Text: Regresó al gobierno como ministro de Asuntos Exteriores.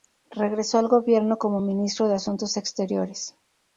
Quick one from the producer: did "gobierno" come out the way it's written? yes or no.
yes